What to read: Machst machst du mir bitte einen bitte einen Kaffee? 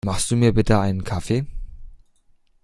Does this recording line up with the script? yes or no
no